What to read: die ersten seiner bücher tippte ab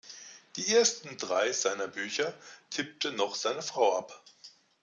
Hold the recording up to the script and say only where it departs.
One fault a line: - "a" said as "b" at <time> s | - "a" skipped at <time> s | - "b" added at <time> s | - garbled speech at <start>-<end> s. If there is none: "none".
- "drei" added at 1.2 s
- "noch seine frau" added at 3.1 s